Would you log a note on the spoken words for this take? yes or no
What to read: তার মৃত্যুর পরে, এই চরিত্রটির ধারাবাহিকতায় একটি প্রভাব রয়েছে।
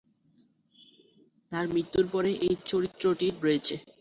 yes